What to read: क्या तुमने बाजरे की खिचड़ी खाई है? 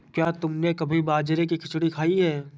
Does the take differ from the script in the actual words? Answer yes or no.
yes